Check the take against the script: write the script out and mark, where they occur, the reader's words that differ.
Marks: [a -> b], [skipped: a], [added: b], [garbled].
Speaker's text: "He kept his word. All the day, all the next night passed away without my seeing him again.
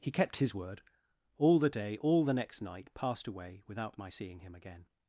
"He kept his word. All the day, all the next night passed away without my seeing him again.